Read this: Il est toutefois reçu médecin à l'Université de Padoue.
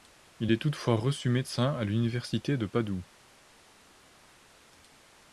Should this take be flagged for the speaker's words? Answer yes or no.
no